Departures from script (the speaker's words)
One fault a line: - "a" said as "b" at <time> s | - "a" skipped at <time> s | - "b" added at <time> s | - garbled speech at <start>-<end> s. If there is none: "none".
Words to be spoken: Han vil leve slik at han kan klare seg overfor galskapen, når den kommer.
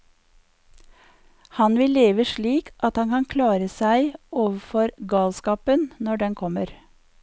none